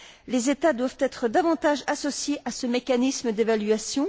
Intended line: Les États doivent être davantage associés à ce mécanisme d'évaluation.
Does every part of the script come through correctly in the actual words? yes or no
yes